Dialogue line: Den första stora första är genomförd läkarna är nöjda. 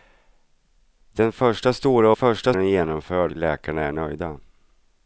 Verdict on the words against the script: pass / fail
pass